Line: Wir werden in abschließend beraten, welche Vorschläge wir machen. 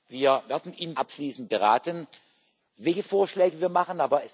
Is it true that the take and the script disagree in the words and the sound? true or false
false